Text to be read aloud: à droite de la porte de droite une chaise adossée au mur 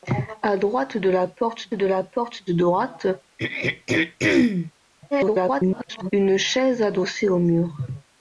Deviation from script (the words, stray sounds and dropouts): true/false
true